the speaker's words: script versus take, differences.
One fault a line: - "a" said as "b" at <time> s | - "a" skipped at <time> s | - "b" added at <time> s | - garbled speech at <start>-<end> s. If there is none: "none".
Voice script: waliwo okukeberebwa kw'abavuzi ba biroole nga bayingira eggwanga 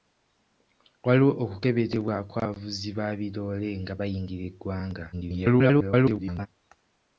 - garbled speech at 5.1-6.5 s